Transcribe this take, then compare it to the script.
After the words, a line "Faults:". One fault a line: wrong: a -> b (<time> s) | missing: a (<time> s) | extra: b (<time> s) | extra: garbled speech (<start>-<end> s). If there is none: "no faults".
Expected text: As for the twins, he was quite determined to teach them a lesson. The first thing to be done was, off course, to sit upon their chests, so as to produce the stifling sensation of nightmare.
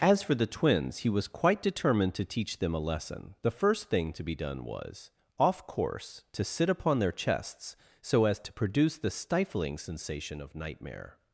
As for the twins, he was quite determined to teach them a lesson. The first thing to be done was, off course, to sit upon their chests, so as to produce the stifling sensation of nightmare.
Faults:
no faults